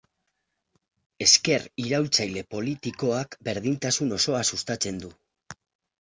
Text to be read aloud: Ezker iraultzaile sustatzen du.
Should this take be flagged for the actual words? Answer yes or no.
yes